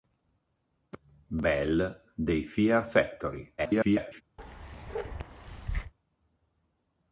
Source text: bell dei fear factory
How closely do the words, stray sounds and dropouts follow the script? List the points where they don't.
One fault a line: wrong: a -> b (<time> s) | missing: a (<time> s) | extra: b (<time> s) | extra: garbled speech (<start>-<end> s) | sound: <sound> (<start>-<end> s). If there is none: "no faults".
extra: garbled speech (3.6-4.2 s)
sound: bark (4.4-5.9 s)